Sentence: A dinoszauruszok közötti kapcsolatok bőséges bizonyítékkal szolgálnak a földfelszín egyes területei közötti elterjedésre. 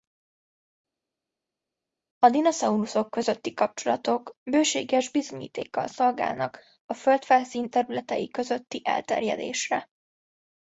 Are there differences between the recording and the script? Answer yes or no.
yes